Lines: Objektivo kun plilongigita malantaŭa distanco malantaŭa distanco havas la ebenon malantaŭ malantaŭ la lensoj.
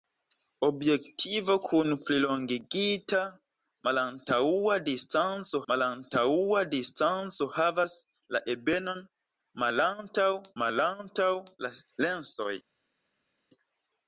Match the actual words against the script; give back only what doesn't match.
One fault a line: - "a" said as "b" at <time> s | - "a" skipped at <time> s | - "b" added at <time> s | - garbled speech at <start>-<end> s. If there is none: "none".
none